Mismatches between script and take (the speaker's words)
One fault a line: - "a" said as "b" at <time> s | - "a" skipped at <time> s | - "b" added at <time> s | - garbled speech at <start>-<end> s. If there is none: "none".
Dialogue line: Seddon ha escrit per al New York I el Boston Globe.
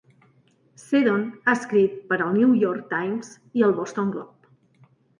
- "Times" added at 3.0 s